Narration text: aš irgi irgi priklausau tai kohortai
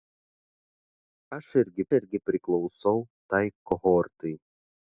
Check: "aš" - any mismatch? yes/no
no